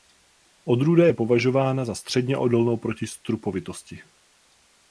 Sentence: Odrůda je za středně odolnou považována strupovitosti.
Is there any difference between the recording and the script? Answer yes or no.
yes